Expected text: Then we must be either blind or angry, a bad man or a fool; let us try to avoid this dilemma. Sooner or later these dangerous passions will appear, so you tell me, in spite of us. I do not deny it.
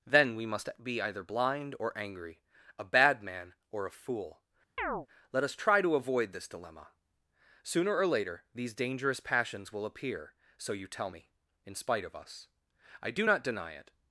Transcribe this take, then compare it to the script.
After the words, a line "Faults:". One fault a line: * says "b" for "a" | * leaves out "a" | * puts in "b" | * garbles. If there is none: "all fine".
Then we must be either blind or angry, a bad man or a fool; let us try to avoid this dilemma. Sooner or later these dangerous passions will appear, so you tell me, in spite of us. I do not deny it.
Faults:
all fine